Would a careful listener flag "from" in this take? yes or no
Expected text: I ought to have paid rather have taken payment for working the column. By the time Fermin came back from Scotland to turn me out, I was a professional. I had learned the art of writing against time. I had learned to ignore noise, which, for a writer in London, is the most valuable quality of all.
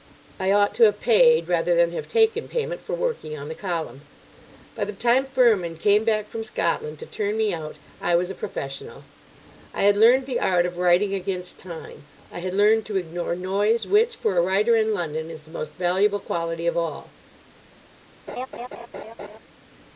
no